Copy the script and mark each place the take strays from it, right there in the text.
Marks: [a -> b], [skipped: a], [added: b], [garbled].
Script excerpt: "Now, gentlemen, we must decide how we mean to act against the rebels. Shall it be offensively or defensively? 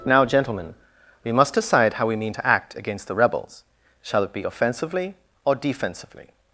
"Now, gentlemen, we must decide how we mean to act against the rebels. Shall it be offensively or defensively?